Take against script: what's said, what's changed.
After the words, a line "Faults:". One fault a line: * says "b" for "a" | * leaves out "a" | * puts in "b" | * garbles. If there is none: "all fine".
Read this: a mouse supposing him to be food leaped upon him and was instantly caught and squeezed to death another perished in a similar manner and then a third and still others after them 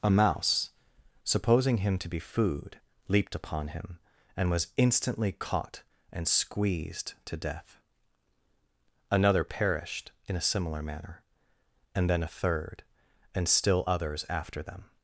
a mouse supposing him to be food leaped upon him and was instantly caught and squeezed to death another perished in a similar manner and then a third and still others after them
Faults:
all fine